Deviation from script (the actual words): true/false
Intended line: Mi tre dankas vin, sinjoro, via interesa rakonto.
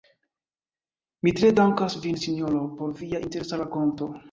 true